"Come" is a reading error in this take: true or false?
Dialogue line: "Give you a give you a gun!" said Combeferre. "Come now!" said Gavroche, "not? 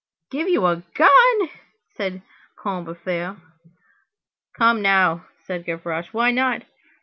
false